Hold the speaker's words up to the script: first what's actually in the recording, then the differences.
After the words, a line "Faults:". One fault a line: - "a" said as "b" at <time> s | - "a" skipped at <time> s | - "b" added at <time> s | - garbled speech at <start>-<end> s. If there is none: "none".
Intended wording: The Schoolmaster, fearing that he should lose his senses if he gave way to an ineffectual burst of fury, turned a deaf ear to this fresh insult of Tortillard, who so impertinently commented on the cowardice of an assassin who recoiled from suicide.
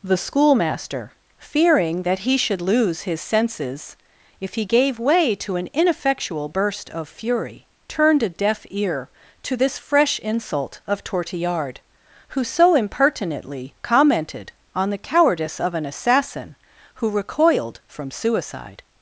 The Schoolmaster, fearing that he should lose his senses if he gave way to an ineffectual burst of fury, turned a deaf ear to this fresh insult of Tortillard, who so impertinently commented on the cowardice of an assassin who recoiled from suicide.
Faults:
none